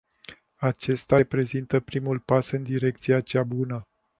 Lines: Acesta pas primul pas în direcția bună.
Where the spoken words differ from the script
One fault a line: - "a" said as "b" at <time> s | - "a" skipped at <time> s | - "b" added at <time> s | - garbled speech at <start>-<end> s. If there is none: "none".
- "pas" said as "reprezintă" at 1.1 s
- "cea" added at 3.2 s